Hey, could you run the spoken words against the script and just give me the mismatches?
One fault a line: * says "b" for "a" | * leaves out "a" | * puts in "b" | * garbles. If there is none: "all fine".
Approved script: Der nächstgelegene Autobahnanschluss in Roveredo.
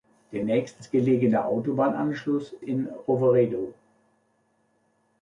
all fine